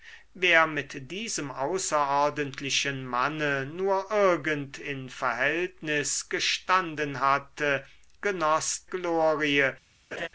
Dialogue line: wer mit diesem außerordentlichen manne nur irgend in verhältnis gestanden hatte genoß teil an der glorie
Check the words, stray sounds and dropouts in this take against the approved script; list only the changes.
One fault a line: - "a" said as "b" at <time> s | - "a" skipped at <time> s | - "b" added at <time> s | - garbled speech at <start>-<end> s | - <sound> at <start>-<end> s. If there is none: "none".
- "teil an der" skipped at 8.9 s
- laugh at 10.1-10.3 s